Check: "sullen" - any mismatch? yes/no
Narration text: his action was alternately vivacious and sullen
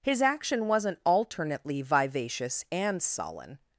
no